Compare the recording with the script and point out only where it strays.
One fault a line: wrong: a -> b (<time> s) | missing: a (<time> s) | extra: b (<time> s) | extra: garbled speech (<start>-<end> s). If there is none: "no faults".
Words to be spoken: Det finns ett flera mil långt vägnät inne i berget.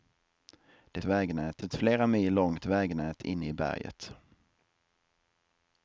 wrong: finns -> vägnät (1.0 s)